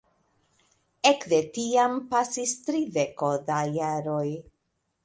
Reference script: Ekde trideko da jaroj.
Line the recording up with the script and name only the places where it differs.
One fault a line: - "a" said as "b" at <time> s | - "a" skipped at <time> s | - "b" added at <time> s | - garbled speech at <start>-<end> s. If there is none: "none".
- "tiam pasis" added at 1.6 s